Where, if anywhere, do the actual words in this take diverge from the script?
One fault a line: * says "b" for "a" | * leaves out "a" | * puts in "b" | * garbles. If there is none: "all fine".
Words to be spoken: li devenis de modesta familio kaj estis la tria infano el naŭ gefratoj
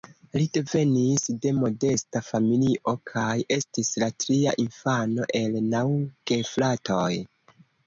all fine